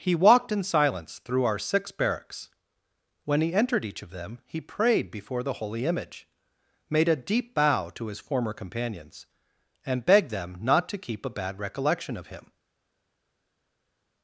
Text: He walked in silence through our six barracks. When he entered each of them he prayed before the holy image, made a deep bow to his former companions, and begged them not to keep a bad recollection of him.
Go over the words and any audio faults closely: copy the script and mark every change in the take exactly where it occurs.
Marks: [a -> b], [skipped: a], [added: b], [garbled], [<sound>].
He walked in silence through our six barracks. When he entered each of them he prayed before the holy image, made a deep bow to his former companions, and begged them not to keep a bad recollection of him.